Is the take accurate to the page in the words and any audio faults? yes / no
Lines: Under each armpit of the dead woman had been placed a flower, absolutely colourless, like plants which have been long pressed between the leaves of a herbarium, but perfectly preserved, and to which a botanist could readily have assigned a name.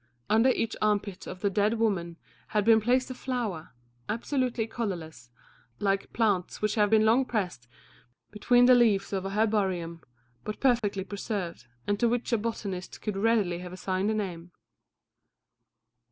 no